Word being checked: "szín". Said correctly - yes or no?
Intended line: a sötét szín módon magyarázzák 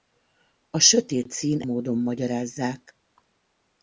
yes